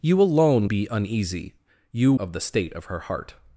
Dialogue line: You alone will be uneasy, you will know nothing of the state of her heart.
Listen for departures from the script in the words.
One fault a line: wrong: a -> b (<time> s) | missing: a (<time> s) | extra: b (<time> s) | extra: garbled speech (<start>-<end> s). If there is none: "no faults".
missing: will (0.7 s)
missing: will know nothing (2.1 s)